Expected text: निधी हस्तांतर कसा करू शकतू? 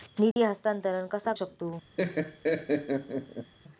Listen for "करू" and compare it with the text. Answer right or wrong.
wrong